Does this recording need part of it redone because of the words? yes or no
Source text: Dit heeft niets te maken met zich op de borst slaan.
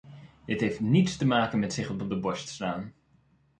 yes